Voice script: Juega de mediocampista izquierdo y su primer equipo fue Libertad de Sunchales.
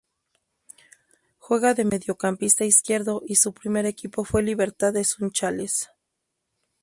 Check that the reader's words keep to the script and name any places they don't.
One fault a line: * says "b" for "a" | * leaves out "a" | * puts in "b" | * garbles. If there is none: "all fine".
all fine